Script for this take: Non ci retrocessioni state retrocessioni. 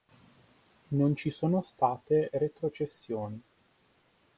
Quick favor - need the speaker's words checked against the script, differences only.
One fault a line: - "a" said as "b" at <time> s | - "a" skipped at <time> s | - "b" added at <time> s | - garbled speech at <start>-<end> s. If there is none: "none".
- "retrocessioni" said as "sono" at 1.3 s